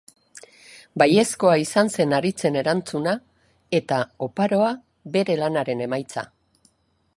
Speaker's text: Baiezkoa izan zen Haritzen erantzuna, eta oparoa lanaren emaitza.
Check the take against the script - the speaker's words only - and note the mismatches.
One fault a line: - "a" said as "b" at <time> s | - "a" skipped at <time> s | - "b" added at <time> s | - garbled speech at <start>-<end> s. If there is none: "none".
- "bere" added at 5.2 s